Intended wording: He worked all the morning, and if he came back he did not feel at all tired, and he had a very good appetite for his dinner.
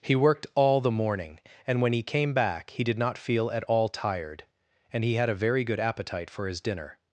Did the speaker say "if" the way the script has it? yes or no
no